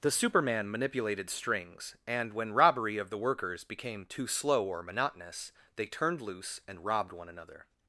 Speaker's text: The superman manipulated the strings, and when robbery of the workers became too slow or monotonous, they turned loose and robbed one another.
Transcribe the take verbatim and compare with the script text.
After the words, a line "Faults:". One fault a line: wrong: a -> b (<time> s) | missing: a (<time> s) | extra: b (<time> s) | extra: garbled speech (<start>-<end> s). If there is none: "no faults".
The superman manipulated strings, and when robbery of the workers became too slow or monotonous, they turned loose and robbed one another.
Faults:
missing: the (1.3 s)